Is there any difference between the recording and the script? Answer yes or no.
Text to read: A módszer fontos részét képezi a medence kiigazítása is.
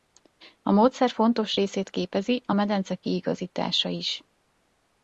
no